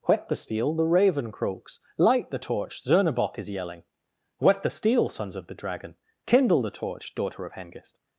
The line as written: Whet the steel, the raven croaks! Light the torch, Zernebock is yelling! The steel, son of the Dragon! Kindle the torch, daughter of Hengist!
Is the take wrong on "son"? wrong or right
wrong